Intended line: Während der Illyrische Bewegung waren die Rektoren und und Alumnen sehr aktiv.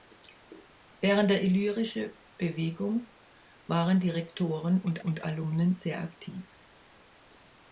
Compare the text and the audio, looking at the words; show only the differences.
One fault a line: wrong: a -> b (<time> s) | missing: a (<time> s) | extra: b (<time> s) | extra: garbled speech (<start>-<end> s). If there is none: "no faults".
no faults